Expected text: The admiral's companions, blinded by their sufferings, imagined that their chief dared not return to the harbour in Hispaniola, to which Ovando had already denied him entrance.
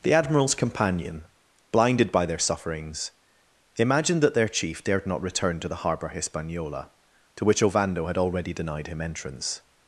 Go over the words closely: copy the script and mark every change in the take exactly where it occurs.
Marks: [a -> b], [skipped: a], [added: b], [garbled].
The admiral's [companions, -> companion] blinded by their sufferings, imagined that their chief dared not return to the harbour [skipped: in] Hispaniola, to which Ovando had already denied him entrance.